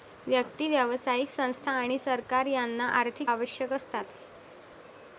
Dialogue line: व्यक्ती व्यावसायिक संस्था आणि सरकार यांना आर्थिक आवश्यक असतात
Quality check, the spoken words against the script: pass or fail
pass